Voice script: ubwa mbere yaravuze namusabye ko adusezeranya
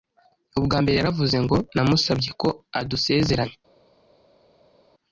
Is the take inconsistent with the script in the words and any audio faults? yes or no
yes